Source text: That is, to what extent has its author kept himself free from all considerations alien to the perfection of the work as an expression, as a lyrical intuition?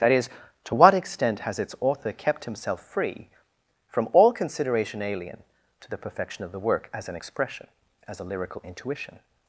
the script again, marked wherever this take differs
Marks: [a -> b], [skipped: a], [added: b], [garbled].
That is, to what extent has its author kept himself free from all [considerations -> consideration] alien to the perfection of the work as an expression, as a lyrical intuition?